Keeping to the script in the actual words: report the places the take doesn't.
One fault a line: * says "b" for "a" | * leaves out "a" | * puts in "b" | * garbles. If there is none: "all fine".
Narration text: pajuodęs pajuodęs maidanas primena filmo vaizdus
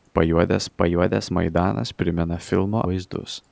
all fine